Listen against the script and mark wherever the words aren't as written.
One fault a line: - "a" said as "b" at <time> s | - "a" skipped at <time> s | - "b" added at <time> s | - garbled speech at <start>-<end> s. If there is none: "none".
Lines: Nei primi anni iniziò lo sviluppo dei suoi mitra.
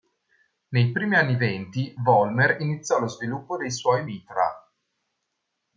- "venti Vollmer" added at 1.4 s